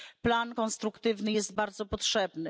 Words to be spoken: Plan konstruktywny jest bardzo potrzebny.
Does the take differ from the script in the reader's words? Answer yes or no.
no